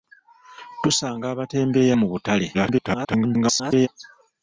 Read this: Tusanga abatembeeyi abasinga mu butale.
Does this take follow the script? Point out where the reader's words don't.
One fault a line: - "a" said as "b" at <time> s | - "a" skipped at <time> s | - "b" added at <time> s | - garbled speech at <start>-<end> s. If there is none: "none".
- "abasinga" skipped at 1.9 s
- garbled speech at 2.5-3.9 s